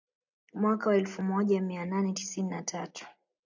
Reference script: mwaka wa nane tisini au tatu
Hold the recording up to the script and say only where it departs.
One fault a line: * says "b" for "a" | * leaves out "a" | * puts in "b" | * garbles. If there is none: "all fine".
* puts in "elfu moja mia"
* says "na" for "au"